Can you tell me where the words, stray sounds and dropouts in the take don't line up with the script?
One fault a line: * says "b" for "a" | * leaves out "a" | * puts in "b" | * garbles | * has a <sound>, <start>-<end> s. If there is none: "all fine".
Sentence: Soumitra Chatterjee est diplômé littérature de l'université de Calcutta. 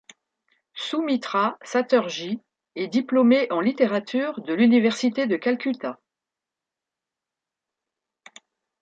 * puts in "en"